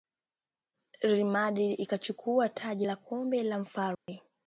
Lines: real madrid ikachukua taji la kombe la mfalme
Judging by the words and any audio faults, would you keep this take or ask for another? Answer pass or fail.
fail